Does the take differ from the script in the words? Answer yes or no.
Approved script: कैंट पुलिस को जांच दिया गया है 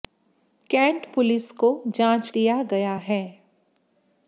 no